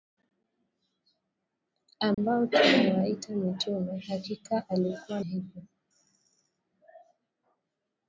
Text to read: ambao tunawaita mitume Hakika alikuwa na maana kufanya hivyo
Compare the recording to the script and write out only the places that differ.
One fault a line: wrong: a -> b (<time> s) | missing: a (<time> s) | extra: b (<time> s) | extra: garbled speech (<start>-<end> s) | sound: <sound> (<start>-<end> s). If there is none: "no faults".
sound: dropout (2.1-2.2 s)
missing: na maana kufanya (5.2 s)